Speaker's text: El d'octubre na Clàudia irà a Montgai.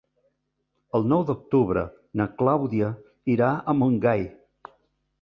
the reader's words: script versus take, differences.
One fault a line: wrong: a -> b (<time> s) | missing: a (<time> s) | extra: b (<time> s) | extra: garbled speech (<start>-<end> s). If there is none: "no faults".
extra: nou (1.1 s)